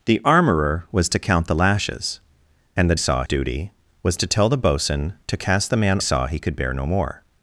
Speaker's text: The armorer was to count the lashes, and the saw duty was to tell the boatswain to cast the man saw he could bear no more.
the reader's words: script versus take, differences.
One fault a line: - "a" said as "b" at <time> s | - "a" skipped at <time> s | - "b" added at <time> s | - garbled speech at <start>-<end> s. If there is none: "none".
none